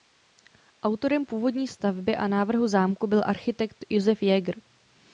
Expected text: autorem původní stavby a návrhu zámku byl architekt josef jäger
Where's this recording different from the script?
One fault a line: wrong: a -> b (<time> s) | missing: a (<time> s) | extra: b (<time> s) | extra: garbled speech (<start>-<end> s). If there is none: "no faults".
no faults